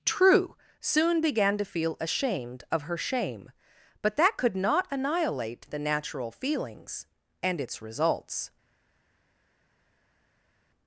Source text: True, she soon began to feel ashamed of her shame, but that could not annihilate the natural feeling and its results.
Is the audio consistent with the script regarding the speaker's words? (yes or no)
no